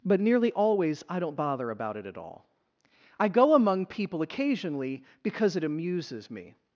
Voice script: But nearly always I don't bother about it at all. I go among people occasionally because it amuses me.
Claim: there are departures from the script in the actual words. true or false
false